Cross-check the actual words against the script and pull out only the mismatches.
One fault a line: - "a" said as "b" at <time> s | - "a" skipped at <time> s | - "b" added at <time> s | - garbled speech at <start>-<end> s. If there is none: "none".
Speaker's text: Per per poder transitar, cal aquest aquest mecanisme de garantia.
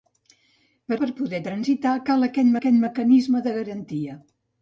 none